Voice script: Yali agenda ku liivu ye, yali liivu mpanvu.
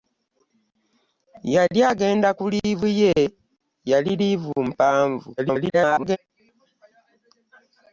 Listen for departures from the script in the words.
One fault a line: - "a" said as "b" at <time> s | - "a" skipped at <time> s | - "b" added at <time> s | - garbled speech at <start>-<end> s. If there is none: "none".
- garbled speech at 5.4-6.2 s